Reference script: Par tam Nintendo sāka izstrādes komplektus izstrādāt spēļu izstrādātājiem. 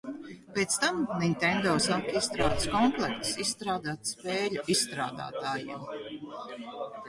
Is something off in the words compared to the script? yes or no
yes